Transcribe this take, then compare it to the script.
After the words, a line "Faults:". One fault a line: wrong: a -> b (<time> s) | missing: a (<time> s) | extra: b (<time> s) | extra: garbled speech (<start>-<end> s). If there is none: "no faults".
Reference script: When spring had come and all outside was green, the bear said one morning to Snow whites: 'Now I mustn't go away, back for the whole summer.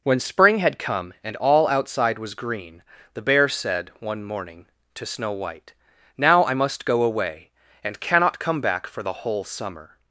When spring had come and all outside was green, the bear said one morning to Snow white: 'Now I must go away, and cannot come back for the whole summer.
Faults:
wrong: whites -> white (5.3 s)
wrong: mustn't -> must (6.5 s)
extra: and cannot come (7.8 s)